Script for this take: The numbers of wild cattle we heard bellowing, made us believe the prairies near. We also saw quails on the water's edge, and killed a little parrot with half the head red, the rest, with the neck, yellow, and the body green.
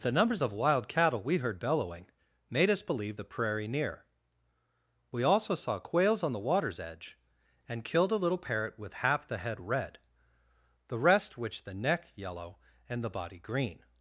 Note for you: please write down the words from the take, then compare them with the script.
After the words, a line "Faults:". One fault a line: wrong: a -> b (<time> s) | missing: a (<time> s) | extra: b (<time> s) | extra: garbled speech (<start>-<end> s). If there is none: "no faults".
The numbers of wild cattle we heard bellowing, made us believe the prairie near. We also saw quails on the water's edge, and killed a little parrot with half the head red, the rest, which the neck, yellow, and the body green.
Faults:
wrong: prairies -> prairie (3.2 s)
wrong: with -> which (11.4 s)